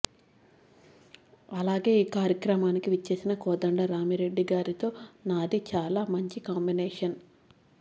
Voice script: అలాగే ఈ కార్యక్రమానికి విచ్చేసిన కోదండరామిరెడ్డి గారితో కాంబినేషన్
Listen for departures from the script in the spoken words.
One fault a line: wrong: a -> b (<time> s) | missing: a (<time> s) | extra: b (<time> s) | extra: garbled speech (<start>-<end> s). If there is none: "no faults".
extra: నాది చాలా మంచి (5.3 s)